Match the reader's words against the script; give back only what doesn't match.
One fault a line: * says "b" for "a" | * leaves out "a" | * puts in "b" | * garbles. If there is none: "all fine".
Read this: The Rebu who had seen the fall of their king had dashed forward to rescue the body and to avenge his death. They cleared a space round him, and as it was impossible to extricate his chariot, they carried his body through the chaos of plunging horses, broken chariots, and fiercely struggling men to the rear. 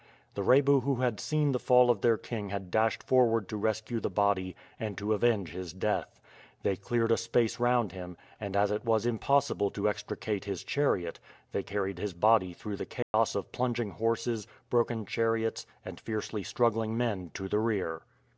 all fine